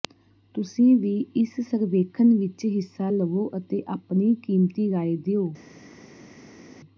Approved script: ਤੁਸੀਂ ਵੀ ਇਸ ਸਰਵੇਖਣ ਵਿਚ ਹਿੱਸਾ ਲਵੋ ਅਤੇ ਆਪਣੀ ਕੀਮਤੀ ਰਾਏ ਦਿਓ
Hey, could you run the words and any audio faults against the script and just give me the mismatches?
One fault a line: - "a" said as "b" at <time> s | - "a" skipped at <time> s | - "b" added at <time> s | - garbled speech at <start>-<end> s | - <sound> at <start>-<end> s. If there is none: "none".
none